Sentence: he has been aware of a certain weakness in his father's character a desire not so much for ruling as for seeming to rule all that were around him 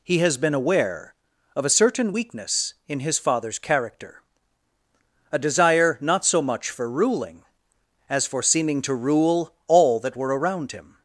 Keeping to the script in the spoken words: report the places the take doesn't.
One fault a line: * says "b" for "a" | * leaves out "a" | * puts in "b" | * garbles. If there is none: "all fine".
all fine